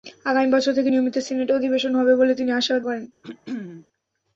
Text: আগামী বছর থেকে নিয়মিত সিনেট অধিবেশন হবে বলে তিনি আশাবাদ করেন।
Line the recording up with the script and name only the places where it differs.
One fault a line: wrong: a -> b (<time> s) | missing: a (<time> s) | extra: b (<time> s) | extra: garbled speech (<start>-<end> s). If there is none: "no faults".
no faults